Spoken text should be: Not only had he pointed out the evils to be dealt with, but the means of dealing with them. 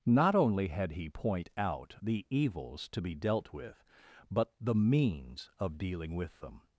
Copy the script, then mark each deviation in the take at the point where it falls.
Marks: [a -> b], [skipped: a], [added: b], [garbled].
Not only had he [pointed -> point] out the evils to be dealt with, but the means of dealing with them.